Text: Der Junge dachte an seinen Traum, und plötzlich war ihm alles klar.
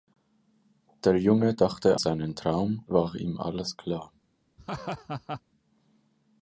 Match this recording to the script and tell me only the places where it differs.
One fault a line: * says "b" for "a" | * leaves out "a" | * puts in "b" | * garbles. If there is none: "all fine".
* leaves out "an"
* leaves out "und plötzlich"